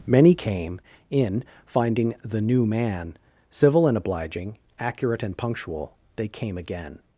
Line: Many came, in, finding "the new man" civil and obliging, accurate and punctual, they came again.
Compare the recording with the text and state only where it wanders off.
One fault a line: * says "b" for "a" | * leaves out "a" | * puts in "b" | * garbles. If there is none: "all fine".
all fine